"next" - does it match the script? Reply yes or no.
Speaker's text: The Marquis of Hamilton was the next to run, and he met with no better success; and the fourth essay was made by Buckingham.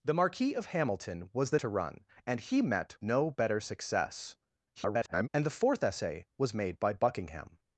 no